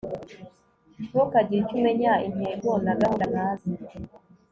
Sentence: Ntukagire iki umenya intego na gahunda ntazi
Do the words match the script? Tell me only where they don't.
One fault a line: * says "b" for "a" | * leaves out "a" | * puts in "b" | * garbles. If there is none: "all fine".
* says "icyo" for "iki"